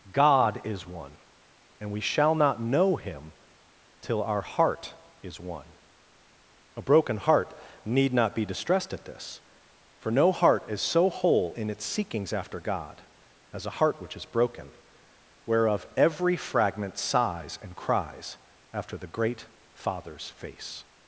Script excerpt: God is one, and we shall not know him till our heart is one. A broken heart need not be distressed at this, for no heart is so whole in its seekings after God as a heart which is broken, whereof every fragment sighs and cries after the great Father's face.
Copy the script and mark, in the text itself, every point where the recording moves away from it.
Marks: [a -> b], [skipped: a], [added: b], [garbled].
God is one, and we shall not know him till our heart is one. A broken heart need not be distressed at this, for no heart is so whole in its seekings after God as a heart which is broken, whereof every fragment sighs and cries after the great Father's face.